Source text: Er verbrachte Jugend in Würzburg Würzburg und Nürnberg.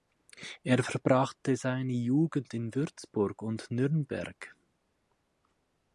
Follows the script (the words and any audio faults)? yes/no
no